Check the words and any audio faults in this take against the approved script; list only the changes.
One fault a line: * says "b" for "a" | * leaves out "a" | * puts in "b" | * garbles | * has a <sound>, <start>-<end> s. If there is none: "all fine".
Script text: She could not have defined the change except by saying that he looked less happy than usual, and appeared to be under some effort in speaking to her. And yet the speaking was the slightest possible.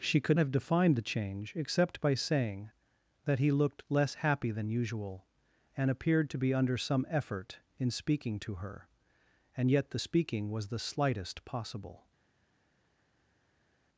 * leaves out "not"